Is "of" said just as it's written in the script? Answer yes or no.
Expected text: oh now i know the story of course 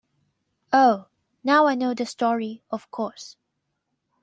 yes